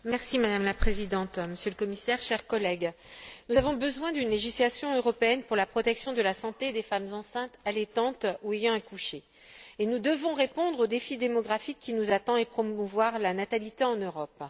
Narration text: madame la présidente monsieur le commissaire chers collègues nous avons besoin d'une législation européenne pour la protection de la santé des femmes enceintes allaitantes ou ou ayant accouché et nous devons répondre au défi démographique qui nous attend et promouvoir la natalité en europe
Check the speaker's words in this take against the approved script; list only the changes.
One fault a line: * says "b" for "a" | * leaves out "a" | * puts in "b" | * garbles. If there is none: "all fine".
* leaves out "ou"